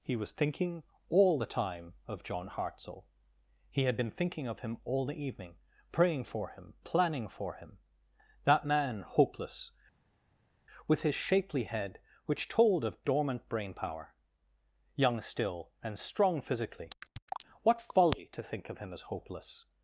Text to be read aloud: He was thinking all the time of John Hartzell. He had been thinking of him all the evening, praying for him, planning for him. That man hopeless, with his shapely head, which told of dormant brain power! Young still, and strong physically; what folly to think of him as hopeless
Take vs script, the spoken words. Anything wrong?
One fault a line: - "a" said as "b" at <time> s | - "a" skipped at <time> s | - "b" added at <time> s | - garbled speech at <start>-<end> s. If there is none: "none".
none